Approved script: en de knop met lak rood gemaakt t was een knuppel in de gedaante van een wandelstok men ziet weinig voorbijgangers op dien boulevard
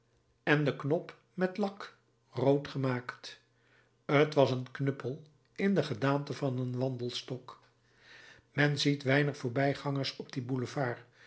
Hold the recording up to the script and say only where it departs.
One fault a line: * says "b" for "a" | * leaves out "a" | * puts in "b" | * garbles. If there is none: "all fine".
all fine